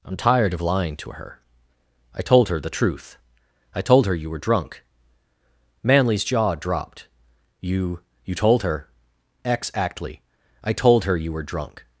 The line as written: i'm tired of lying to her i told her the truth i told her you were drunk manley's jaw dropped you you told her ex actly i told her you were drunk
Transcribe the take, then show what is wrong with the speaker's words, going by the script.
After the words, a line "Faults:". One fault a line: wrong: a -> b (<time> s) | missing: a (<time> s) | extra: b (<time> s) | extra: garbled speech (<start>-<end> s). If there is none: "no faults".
i'm tired of lying to her i told her the truth i told her you were drunk manley's jaw dropped you you told her ex actly i told her you were drunk
Faults:
no faults